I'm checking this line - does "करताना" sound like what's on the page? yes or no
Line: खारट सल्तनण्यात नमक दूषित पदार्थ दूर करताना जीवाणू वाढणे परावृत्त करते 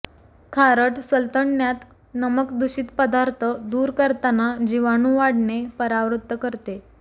yes